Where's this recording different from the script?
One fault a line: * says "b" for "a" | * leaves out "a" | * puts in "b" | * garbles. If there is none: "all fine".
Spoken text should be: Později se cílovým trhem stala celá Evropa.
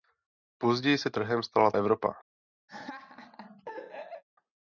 * leaves out "cílovým"
* leaves out "celá"